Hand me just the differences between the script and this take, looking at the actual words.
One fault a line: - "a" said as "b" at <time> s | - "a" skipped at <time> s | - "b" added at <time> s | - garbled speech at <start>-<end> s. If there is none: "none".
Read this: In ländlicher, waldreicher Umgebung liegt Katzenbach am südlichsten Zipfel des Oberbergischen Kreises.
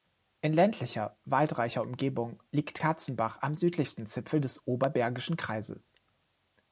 none